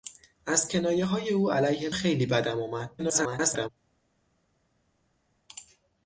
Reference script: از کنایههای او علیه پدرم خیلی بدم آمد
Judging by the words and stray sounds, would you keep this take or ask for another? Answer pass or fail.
fail